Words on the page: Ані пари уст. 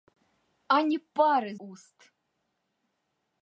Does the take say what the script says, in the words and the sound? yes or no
yes